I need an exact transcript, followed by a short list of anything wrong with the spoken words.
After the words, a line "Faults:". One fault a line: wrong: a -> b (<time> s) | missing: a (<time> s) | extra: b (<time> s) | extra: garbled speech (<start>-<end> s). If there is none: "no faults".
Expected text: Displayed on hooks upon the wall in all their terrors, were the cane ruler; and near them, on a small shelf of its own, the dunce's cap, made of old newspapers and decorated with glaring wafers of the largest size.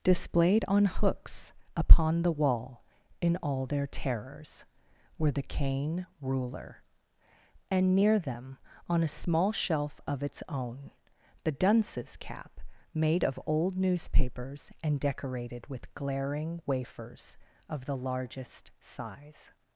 Displayed on hooks upon the wall in all their terrors, were the cane ruler; and near them, on a small shelf of its own, the dunce's cap, made of old newspapers and decorated with glaring wafers of the largest size.
Faults:
no faults